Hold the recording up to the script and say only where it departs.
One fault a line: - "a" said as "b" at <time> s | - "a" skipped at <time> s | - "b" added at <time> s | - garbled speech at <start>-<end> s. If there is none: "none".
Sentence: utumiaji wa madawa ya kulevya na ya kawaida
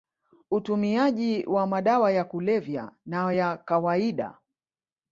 none